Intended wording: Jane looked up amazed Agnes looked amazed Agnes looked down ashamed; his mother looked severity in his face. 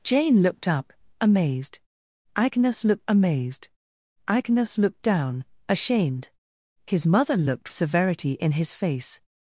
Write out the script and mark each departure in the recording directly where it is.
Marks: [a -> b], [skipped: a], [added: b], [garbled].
Jane looked up amazed Agnes looked amazed Agnes looked down ashamed; his mother looked severity in his face.